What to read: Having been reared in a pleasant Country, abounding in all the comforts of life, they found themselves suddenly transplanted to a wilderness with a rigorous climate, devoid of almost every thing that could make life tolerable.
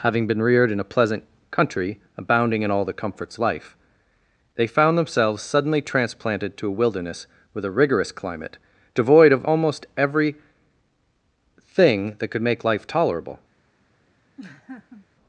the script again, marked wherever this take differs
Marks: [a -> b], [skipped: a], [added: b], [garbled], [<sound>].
Having been reared in a pleasant Country, abounding in all the comforts [skipped: of] life, they found themselves suddenly transplanted to a wilderness with a rigorous climate, devoid of almost every thing that could make life tolerable. [laugh]